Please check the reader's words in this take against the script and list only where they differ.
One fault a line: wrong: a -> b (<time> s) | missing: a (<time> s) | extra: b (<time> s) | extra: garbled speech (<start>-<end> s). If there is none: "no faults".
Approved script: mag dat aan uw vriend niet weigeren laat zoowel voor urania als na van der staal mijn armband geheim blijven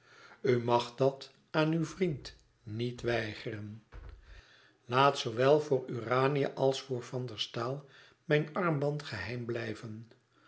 wrong: na -> voor (6.8 s)